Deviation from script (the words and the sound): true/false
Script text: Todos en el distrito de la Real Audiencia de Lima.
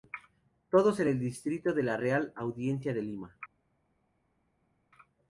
false